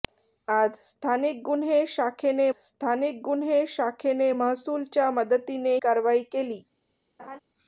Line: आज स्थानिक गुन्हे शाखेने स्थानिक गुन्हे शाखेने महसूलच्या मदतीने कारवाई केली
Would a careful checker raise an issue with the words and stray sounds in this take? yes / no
yes